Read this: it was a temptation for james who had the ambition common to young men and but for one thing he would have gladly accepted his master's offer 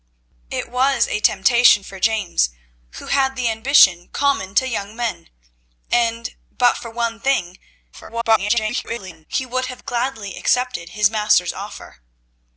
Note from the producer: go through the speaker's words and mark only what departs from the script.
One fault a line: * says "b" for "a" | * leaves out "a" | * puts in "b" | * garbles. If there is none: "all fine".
* garbles